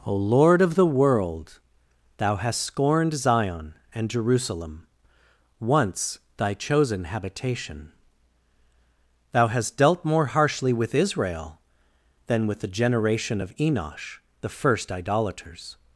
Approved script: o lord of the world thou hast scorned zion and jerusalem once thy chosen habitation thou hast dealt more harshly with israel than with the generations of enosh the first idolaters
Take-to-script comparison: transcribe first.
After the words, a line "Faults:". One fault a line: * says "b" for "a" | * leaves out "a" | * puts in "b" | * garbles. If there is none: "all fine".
o lord of the world thou hast scorned zion and jerusalem once thy chosen habitation thou hast dealt more harshly with israel than with the generation of enosh the first idolaters
Faults:
* says "generation" for "generations"